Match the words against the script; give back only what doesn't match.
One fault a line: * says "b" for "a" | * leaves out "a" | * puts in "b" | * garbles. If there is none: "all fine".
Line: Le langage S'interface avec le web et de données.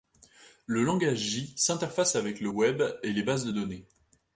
* puts in "J"
* puts in "les bases"